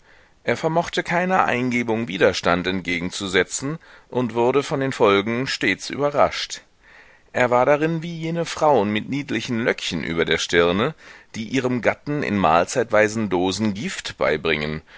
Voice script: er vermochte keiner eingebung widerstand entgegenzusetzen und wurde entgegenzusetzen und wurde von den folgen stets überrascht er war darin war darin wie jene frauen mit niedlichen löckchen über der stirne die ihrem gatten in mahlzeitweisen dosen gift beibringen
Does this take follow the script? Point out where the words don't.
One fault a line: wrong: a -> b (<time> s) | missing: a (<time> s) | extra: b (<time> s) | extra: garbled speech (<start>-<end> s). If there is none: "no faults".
missing: entgegenzusetzen und wurde (4.6 s)
missing: war darin (8.0 s)